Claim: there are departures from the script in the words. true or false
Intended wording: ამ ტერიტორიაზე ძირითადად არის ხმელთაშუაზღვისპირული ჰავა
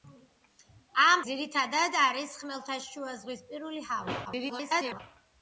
true